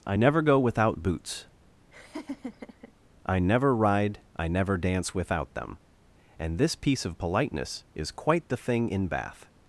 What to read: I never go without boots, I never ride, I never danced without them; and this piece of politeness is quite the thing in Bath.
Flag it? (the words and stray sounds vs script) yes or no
yes